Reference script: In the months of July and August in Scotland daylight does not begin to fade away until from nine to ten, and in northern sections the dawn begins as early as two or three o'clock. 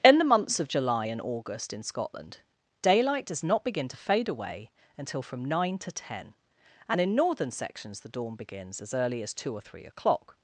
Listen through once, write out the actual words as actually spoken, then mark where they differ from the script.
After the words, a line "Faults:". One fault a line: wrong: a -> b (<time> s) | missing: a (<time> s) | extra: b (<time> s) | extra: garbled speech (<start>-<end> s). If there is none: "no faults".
In the months of July and August in Scotland daylight does not begin to fade away until from nine to ten, and in northern sections the dawn begins as early as two or three o'clock.
Faults:
no faults